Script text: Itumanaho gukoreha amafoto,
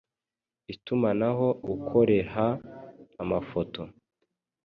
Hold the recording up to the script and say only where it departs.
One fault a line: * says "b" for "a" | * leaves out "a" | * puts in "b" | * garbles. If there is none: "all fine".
all fine